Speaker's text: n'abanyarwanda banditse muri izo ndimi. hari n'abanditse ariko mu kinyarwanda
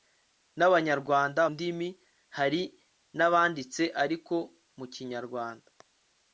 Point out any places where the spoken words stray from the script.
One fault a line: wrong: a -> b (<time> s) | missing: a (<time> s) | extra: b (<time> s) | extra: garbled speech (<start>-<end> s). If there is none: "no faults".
missing: banditse muri izo (1.4 s)